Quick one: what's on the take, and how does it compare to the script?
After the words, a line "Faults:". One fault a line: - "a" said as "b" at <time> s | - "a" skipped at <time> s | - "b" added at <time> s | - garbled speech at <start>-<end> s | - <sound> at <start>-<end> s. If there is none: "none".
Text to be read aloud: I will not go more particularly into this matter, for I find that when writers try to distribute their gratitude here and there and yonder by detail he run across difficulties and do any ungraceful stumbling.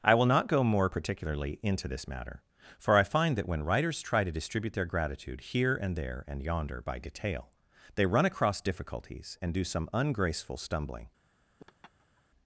I will not go more particularly into this matter, for I find that when writers try to distribute their gratitude here and there and yonder by detail they run across difficulties and do some ungraceful stumbling.
Faults:
- "he" said as "they" at 7.9 s
- "any" said as "some" at 9.6 s
- laugh at 11.6-12.2 s